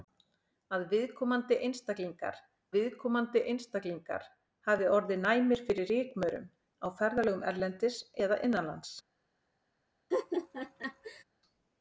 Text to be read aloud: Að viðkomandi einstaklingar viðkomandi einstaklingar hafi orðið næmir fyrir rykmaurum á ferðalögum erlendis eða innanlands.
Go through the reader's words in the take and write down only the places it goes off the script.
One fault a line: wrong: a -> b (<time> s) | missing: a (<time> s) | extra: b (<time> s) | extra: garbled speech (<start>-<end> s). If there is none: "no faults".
no faults